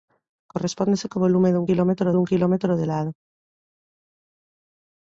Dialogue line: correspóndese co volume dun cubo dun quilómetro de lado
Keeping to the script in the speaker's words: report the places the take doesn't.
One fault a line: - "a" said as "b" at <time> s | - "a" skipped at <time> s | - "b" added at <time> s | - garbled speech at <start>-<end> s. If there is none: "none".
- "cubo" said as "quilómetro" at 1.7 s